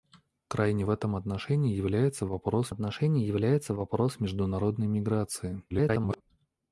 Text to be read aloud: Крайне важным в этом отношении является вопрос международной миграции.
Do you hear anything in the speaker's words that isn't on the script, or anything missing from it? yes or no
yes